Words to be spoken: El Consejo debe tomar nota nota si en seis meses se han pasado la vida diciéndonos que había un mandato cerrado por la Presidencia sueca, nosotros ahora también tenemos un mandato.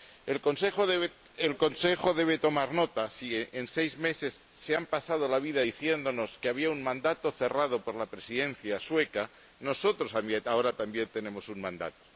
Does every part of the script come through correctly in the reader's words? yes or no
no